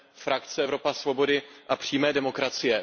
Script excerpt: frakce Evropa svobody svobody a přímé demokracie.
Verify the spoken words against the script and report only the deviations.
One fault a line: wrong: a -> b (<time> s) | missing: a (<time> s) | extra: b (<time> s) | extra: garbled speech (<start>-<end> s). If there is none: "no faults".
missing: svobody (1.4 s)